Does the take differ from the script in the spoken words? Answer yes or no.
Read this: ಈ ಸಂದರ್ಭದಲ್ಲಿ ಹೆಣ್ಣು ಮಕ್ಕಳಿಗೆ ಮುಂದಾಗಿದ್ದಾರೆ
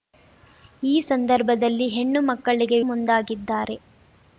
no